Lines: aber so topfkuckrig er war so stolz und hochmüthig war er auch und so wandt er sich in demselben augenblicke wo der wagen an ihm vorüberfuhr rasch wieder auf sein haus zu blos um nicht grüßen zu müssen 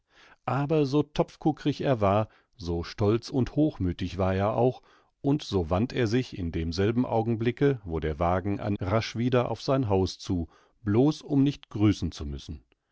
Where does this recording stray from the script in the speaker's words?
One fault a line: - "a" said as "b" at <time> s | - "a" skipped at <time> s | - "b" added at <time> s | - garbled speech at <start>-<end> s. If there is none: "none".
- "ihm vorüberfuhr" skipped at 8.8 s